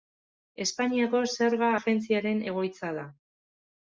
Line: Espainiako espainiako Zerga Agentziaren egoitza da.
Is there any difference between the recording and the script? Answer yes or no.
yes